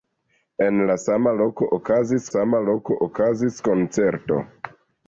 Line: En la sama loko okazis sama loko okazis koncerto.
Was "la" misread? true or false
false